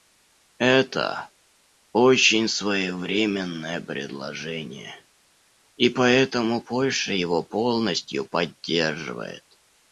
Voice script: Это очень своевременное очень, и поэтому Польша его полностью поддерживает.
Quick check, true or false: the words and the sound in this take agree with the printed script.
false